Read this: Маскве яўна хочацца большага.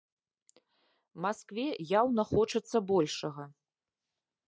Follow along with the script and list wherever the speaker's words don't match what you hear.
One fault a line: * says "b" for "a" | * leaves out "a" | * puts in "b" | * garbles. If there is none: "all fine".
all fine